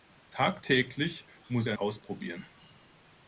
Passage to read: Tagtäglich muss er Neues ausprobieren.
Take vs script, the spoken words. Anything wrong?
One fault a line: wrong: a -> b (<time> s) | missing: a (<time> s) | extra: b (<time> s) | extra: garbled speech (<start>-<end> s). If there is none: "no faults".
missing: Neues (1.8 s)